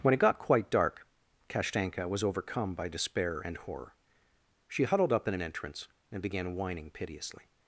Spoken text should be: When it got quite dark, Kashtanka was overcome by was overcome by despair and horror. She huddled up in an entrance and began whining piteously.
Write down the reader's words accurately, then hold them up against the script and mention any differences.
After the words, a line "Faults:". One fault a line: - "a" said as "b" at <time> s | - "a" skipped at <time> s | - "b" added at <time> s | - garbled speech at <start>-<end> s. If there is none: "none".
When it got quite dark, Kashtanka was overcome by despair and horror. She huddled up in an entrance and began whining piteously.
Faults:
- "was overcome by" skipped at 2.9 s